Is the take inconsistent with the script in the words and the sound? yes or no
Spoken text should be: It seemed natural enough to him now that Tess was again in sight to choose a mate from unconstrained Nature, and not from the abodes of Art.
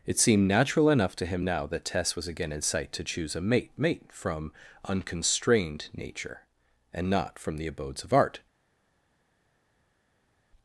yes